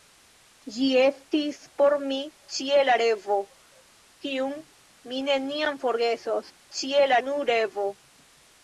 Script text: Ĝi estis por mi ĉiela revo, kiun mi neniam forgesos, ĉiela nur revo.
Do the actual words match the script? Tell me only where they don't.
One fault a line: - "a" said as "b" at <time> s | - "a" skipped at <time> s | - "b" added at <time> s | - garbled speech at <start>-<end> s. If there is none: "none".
none